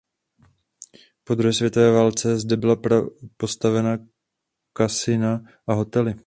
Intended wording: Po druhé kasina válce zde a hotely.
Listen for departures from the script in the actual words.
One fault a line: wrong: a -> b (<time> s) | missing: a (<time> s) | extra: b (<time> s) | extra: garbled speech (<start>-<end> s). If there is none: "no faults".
wrong: kasina -> světové (1.5 s)
extra: byla postavena kasina (2.6 s)